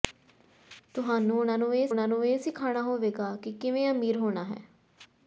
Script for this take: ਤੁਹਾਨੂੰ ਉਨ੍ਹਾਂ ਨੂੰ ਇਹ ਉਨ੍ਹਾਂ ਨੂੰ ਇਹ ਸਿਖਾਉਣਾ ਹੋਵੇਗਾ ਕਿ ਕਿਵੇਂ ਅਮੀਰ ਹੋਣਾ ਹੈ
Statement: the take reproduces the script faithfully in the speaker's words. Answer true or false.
true